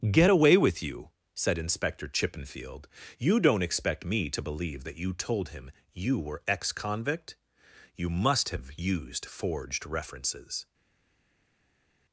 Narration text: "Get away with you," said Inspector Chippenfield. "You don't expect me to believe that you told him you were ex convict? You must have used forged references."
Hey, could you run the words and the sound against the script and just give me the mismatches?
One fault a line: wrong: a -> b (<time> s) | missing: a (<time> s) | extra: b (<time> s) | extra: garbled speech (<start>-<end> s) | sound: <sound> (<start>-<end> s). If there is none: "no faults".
no faults